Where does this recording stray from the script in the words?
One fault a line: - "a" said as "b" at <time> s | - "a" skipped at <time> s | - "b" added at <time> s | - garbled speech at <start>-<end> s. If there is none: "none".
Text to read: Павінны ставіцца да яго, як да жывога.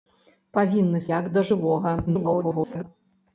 - "ставіцца да яго" skipped at 1.0 s
- garbled speech at 2.1-2.8 s